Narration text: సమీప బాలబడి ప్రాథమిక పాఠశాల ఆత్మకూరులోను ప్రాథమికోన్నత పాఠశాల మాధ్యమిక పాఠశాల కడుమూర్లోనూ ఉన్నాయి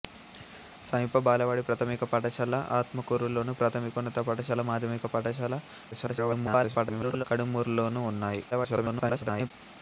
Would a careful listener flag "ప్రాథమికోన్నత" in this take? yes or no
no